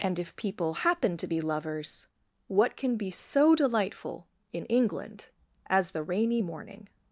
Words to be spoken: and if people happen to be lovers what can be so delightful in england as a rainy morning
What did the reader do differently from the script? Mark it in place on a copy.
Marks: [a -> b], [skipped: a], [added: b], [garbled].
and if people happen to be lovers what can be so delightful in england as [a -> the] rainy morning